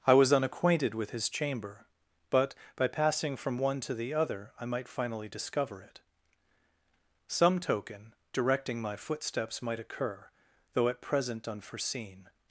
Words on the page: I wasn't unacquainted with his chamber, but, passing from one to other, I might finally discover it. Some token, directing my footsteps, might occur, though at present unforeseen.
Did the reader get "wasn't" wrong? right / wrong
wrong